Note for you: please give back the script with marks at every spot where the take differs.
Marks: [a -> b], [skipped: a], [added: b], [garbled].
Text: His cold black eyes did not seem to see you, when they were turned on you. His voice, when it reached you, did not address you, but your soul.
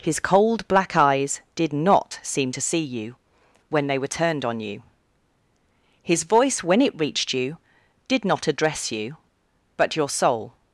His cold black eyes did not seem to see you, when they were turned on you. His voice, when it reached you, did not address you, but your soul.